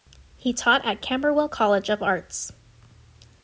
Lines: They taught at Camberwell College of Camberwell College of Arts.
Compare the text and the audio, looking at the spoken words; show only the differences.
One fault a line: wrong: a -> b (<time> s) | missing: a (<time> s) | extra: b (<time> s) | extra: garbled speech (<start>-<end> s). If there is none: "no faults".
wrong: They -> He (0.3 s)
missing: Camberwell College of (2.0 s)